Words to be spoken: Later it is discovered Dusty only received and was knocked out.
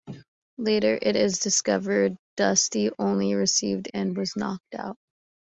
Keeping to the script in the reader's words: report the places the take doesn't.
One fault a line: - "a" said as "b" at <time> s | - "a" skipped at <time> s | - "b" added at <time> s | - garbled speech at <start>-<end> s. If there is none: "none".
none